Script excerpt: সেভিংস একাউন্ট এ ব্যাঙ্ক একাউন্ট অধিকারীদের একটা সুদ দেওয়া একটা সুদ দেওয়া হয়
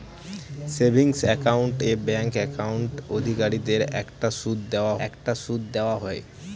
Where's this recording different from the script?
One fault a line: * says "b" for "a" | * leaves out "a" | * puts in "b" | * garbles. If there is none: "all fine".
all fine